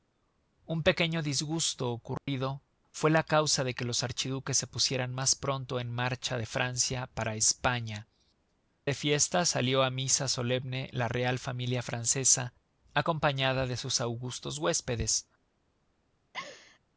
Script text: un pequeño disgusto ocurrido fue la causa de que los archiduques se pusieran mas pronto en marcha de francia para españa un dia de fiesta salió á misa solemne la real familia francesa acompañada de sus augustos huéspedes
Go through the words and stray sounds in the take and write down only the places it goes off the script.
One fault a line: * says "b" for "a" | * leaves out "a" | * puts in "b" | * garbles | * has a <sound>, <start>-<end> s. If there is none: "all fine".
* has a dropout, 2.2-2.3 s
* leaves out "un dia"
* has a laugh, 16.3-16.8 s